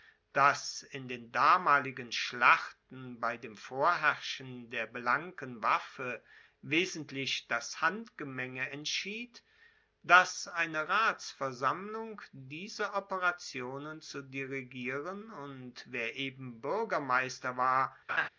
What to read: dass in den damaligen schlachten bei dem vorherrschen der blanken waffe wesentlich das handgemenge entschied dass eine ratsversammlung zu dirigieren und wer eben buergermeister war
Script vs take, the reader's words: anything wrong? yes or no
yes